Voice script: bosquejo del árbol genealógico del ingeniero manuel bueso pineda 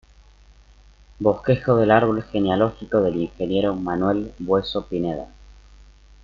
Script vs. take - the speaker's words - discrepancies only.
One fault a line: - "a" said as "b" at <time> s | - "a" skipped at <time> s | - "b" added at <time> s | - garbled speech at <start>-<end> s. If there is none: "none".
none